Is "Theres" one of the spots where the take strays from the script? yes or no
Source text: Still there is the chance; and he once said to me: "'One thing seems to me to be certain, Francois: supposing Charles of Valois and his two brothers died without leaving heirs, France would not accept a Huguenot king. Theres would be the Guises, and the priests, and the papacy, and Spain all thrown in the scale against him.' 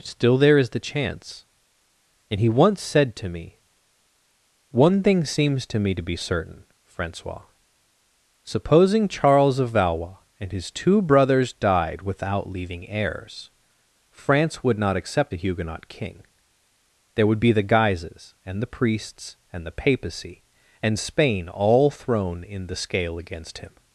yes